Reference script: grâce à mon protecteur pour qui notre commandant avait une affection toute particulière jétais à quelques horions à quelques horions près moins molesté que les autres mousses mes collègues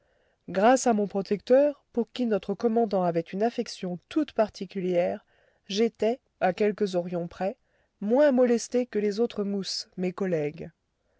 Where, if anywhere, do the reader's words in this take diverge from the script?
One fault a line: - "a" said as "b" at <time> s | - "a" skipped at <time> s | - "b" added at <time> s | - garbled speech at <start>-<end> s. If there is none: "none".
- "à quelques horions" skipped at 7.3 s